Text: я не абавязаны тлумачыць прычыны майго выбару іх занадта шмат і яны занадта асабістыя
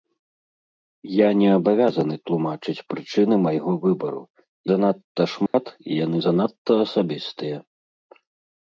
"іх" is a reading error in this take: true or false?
true